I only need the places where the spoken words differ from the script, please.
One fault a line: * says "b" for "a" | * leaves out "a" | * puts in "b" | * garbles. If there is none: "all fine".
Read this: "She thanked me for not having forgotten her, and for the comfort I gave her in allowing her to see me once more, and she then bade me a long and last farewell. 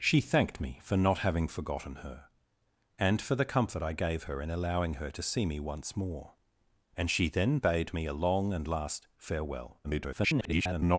* garbles